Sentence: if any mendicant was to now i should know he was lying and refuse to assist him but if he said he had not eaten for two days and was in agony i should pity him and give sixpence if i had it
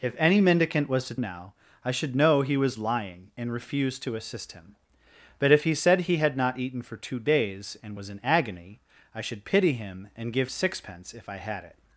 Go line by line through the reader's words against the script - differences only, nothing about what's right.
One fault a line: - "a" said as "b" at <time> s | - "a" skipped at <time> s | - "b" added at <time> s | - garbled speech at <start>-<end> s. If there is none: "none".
none